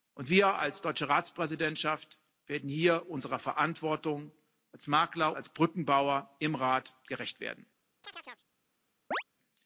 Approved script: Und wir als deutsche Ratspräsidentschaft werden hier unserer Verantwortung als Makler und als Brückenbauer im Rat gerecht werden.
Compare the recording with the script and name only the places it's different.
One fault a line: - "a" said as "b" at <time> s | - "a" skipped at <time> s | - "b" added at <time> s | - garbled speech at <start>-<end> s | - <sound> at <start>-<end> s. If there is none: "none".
- "und" skipped at 5.3 s
- chirp at 8.0-8.4 s
- chirp at 9.1-9.2 s